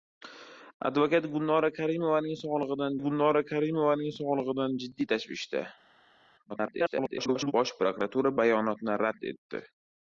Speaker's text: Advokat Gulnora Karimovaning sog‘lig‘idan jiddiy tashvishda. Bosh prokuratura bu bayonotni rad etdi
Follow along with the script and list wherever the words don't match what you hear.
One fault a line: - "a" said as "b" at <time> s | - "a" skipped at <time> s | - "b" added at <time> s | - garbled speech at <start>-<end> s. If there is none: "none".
- "Gulnora Karimovaning sog‘lig‘idan" added at 3.0 s
- garbled speech at 6.5-7.5 s
- "bu" skipped at 8.4 s